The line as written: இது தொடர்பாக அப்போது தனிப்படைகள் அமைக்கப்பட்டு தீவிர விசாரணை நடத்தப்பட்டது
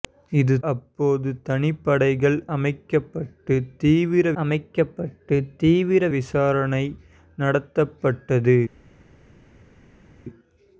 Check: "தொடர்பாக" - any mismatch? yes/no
yes